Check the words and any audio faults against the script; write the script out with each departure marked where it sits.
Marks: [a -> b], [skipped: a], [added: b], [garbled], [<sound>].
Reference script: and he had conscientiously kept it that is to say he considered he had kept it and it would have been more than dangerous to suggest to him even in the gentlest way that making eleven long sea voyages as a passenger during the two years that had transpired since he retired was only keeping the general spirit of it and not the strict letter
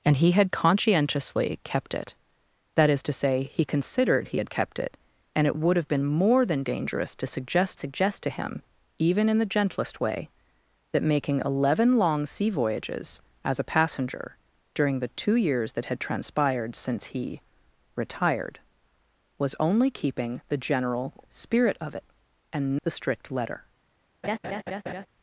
and he had conscientiously kept it that is to say he considered he had kept it and it would have been more than dangerous to suggest [added: suggest] to him even in the gentlest way that making eleven long sea voyages as a passenger during the two years that had transpired since he retired was only keeping the general spirit of it and [skipped: not] the strict letter [laugh]